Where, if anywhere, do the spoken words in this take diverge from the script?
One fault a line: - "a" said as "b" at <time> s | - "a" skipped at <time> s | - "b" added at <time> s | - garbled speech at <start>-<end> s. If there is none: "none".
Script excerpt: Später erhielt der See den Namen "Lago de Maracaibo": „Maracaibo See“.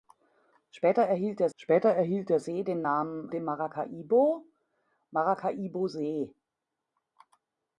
- "später erhielt der" added at 1.6 s
- "Lago" skipped at 3.3 s